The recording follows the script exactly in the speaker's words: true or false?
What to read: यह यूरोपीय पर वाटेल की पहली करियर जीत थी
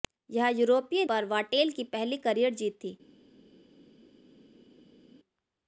true